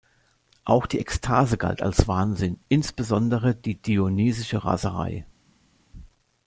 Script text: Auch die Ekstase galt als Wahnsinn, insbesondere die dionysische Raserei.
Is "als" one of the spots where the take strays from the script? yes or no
no